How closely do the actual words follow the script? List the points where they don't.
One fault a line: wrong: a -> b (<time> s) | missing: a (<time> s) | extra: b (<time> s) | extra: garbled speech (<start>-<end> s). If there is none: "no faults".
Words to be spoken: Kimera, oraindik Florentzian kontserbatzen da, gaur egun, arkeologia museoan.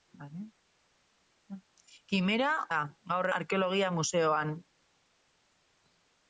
missing: oraindik Florentzian kontserbatzen (2.5 s)
missing: egun (3.3 s)